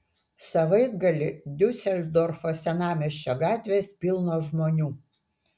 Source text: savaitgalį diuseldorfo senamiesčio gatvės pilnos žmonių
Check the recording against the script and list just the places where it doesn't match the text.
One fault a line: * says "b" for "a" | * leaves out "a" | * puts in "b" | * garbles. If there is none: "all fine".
all fine